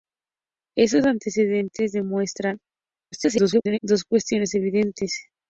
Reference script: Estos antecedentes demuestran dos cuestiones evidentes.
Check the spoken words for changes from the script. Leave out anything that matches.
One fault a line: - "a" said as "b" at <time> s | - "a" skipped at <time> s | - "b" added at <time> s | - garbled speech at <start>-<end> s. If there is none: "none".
- garbled speech at 3.1-3.8 s